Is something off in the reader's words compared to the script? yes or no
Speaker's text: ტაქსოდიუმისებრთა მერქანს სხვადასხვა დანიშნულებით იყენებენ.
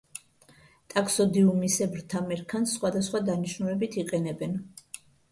no